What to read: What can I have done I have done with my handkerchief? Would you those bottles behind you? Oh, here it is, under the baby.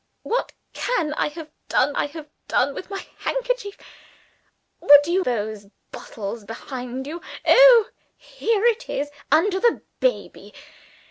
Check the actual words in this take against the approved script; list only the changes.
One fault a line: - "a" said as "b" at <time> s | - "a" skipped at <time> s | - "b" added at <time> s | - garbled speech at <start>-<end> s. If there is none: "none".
none